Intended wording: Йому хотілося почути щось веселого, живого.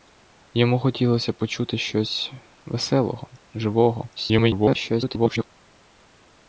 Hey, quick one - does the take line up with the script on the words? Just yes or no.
no